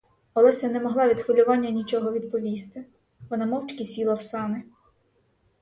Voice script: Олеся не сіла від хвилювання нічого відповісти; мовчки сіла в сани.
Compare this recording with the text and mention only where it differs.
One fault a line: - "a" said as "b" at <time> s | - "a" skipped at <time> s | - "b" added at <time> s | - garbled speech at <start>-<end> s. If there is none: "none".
- "сіла" said as "могла" at 0.8 s
- "вона" added at 3.3 s